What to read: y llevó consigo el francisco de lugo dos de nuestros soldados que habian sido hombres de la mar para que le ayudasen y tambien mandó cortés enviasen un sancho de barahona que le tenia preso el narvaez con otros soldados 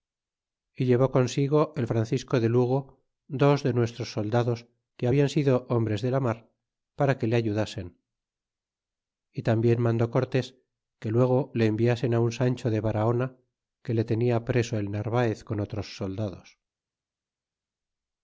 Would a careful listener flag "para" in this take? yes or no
no